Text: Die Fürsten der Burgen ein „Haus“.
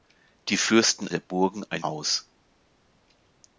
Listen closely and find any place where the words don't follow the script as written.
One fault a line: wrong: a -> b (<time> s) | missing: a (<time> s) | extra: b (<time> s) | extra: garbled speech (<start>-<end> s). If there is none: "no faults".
no faults